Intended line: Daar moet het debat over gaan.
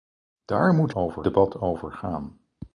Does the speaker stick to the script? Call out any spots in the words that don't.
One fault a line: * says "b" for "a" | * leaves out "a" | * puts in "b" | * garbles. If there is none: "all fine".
* says "over" for "het"